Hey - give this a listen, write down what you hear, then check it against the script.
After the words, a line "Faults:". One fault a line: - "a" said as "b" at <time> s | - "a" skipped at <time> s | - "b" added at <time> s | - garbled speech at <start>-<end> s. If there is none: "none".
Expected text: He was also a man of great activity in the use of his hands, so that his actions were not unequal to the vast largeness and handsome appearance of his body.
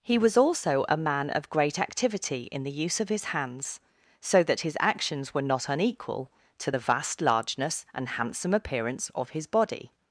He was also a man of great activity in the use of his hands, so that his actions were not unequal to the vast largeness and handsome appearance of his body.
Faults:
none